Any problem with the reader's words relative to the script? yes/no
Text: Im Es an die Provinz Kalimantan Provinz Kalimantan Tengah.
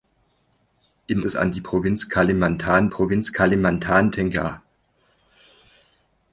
no